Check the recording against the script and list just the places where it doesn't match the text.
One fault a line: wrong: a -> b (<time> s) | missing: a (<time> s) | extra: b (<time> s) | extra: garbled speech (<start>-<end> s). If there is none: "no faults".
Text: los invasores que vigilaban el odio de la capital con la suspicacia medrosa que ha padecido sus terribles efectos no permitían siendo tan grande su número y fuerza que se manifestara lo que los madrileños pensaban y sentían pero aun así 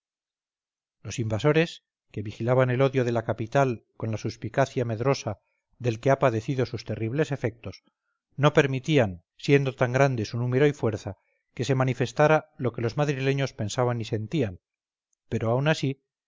extra: del (5.8 s)